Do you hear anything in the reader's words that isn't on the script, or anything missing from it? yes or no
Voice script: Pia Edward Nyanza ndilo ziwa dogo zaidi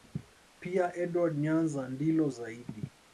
yes